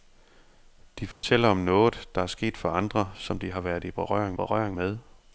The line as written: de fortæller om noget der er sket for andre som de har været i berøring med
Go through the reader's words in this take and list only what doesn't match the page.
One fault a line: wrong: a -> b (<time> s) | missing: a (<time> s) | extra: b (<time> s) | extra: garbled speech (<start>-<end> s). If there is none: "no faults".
extra: berøring (4.3 s)